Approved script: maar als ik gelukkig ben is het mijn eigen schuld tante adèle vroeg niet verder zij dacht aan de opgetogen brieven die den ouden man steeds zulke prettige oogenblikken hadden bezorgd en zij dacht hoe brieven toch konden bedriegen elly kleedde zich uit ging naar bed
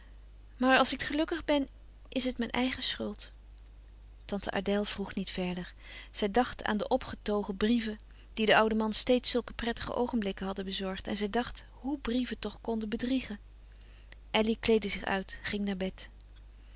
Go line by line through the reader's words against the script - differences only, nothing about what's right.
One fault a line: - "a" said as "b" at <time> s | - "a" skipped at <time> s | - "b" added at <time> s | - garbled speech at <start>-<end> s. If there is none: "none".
none